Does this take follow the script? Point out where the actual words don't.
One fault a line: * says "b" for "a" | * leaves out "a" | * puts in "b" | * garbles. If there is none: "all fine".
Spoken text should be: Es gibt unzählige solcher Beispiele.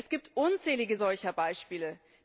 all fine